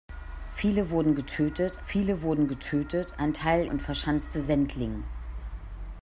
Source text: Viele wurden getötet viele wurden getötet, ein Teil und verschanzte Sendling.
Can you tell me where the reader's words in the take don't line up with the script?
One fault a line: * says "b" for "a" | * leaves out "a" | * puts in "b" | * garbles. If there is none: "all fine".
all fine